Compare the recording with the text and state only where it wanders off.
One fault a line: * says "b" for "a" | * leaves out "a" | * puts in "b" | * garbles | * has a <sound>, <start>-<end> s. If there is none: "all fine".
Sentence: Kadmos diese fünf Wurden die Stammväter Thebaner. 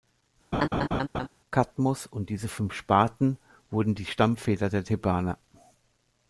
* has a laugh, 0.5-1.3 s
* puts in "und"
* puts in "Sparten"
* puts in "der"